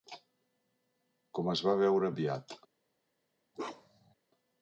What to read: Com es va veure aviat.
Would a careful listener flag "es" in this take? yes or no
no